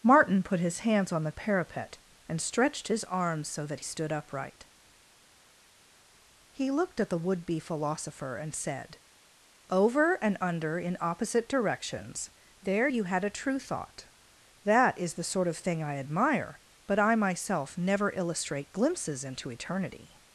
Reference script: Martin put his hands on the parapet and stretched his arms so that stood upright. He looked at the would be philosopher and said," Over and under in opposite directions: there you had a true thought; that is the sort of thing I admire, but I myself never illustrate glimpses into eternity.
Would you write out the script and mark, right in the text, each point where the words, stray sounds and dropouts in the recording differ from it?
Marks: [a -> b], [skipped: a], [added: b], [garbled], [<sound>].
Martin put his hands on the parapet and stretched his arms so that stood upright. He looked at the would be philosopher and said," Over and under in opposite directions: there you had a true thought; that is the sort of thing I admire, but I myself never illustrate glimpses into eternity.